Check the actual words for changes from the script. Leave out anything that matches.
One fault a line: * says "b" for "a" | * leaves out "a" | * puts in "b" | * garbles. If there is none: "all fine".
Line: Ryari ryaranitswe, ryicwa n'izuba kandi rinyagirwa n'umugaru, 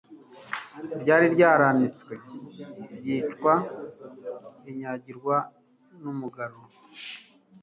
* leaves out "n'izuba kandi"